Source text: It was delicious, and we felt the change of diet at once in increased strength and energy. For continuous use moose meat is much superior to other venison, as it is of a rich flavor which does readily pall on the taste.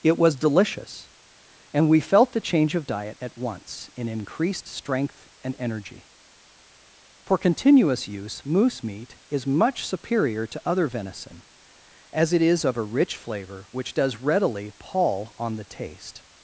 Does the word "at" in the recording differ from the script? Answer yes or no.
no